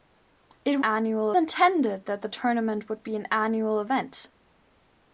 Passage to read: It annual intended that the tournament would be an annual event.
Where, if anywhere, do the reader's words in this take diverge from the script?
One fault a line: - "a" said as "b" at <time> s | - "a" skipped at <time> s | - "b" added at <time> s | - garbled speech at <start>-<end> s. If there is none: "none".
none